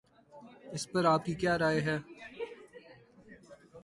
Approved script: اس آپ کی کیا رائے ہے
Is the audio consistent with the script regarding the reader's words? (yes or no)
no